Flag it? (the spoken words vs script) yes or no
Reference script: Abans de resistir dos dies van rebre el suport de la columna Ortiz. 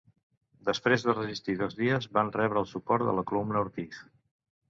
yes